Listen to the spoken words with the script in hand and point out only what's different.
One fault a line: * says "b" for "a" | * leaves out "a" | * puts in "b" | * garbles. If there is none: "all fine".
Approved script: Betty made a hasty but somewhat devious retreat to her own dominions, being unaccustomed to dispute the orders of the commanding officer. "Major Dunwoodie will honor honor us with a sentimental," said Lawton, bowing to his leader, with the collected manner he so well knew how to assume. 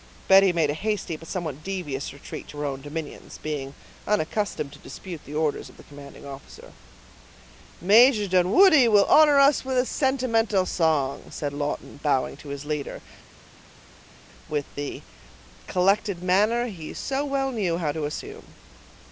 * leaves out "honor"
* puts in "song"